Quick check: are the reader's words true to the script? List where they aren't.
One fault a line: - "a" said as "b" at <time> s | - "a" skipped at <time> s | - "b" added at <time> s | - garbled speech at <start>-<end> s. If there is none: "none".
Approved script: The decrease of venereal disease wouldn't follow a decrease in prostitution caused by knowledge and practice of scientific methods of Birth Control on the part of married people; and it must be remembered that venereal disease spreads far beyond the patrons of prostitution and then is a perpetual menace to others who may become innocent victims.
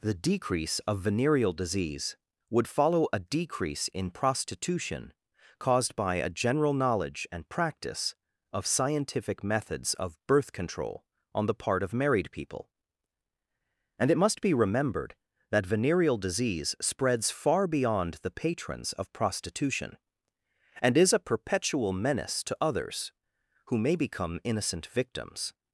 - "wouldn't" said as "would" at 2.5 s
- "a general" added at 6.2 s
- "then" skipped at 21.0 s